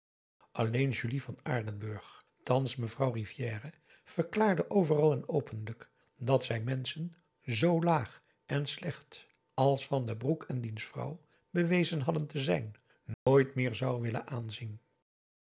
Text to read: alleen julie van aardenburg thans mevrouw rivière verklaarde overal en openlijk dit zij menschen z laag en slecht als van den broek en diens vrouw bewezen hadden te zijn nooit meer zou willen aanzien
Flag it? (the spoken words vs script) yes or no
yes